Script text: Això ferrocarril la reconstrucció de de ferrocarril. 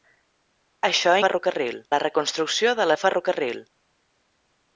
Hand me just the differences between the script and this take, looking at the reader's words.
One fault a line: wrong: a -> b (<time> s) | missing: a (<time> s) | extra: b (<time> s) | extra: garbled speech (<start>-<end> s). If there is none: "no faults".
no faults